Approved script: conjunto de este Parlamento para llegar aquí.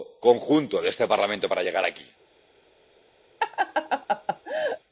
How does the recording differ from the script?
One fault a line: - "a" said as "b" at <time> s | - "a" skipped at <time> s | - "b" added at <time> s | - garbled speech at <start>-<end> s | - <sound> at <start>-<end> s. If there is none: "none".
- laugh at 3.4-4.8 s